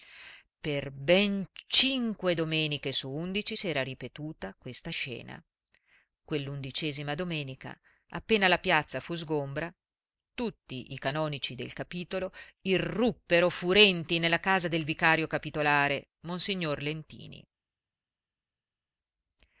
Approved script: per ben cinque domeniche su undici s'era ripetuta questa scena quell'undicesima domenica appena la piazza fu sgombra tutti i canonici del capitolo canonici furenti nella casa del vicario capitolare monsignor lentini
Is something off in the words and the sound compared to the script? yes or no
yes